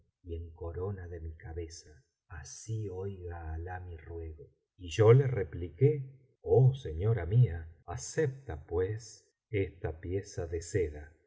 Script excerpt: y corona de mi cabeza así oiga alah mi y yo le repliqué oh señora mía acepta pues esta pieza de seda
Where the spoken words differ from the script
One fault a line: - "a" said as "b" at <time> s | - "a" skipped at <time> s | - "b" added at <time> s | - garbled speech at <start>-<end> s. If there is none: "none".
- "en" added at 0.3 s
- "ruego" added at 4.0 s